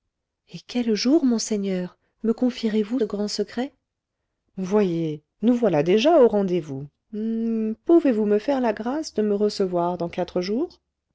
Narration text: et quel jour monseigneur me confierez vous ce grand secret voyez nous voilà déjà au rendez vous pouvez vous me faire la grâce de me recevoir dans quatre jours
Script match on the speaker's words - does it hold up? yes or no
no